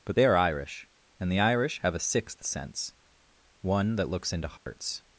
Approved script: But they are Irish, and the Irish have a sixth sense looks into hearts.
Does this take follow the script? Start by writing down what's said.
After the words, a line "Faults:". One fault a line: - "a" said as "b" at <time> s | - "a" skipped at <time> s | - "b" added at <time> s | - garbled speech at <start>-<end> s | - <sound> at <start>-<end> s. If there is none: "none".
But they are Irish, and the Irish have a sixth sense one that looks into hearts.
Faults:
- "one that" added at 3.6 s
- dropout at 4.6-4.7 s